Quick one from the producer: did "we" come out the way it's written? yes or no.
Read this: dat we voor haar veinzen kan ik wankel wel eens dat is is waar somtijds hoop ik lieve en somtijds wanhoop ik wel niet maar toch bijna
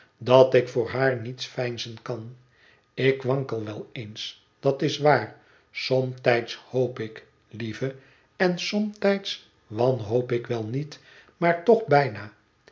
no